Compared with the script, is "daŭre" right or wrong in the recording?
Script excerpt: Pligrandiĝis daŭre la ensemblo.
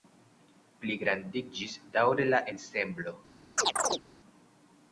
right